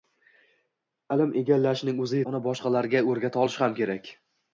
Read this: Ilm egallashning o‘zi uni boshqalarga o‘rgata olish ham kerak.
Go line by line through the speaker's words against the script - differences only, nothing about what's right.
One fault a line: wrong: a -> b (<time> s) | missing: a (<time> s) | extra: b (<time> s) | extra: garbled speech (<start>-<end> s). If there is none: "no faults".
no faults